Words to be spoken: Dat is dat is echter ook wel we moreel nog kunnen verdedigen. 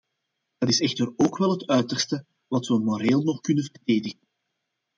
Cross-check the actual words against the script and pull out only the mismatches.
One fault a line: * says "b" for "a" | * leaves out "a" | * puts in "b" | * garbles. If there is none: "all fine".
* leaves out "dat is"
* puts in "het uiterste wat"